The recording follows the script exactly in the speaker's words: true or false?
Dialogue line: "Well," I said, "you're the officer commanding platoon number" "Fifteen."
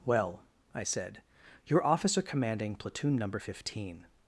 false